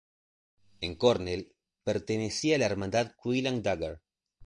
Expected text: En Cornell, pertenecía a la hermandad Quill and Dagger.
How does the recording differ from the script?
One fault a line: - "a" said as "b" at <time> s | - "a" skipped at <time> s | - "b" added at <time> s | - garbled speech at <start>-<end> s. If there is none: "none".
none